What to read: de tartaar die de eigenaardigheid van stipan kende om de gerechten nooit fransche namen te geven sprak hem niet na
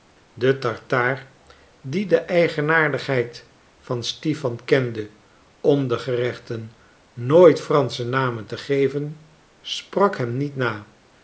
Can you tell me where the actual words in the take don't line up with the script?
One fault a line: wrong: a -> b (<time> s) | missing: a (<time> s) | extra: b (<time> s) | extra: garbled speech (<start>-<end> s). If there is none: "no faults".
no faults